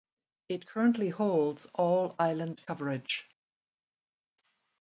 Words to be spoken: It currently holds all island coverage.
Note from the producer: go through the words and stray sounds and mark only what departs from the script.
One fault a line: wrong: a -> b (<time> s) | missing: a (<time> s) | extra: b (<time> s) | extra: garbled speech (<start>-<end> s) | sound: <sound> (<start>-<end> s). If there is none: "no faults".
no faults